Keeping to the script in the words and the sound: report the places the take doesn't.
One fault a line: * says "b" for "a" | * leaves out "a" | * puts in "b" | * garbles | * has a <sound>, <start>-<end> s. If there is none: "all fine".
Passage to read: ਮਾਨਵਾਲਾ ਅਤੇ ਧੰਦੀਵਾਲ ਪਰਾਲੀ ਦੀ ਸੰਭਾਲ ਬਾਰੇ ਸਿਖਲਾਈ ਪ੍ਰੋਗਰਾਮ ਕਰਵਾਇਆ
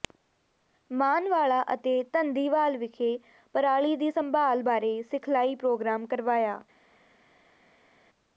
* puts in "ਵਿਖੇ"